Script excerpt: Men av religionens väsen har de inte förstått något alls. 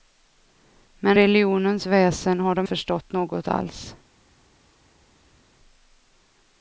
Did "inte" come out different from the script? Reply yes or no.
yes